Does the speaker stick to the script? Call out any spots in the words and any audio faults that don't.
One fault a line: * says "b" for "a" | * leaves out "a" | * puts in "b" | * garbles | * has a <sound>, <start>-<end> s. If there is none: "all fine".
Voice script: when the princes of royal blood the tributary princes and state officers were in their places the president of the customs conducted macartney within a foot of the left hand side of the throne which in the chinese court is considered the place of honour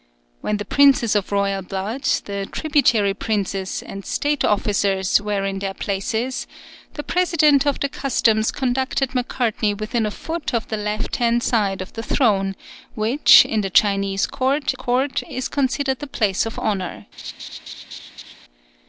* puts in "court"
* has a laugh, 17.2-18.3 s